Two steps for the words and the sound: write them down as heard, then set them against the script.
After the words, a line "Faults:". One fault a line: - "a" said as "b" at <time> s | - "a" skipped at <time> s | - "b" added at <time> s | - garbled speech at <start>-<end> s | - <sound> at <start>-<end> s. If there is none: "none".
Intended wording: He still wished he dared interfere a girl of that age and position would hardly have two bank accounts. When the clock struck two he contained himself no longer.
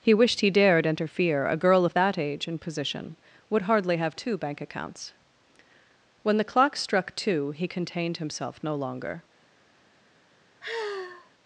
He wished he dared interfere a girl of that age and position would hardly have two bank accounts. When the clock struck two he contained himself no longer.
Faults:
- "still" skipped at 0.1 s
- sigh at 10.6-11.3 s